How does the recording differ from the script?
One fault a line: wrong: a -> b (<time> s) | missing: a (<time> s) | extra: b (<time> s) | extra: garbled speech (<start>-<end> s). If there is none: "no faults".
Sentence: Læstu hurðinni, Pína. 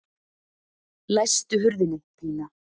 no faults